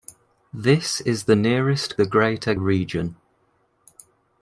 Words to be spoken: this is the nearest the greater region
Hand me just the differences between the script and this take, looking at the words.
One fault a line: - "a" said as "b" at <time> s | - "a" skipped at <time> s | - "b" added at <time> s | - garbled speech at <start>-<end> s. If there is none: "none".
none